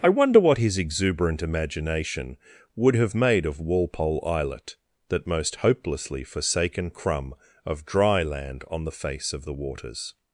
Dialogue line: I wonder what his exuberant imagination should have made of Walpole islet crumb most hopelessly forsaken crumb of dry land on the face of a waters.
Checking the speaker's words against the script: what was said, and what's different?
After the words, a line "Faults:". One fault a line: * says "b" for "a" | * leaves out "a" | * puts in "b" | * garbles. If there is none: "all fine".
I wonder what his exuberant imagination would have made of Walpole islet that most hopelessly forsaken crumb of dry land on the face of the waters.
Faults:
* says "would" for "should"
* says "that" for "crumb"
* says "the" for "a"